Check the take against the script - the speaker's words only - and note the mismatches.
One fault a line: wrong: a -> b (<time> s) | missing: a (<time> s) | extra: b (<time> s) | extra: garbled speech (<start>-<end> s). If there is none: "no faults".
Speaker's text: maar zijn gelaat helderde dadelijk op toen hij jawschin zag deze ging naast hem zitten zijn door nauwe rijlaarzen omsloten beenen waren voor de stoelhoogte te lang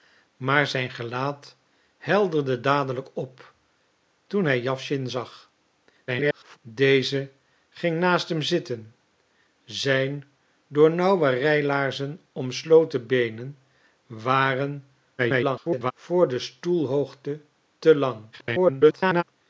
extra: garbled speech (6.1-6.6 s)
extra: garbled speech (15.2-15.9 s)
extra: garbled speech (18.3-19.2 s)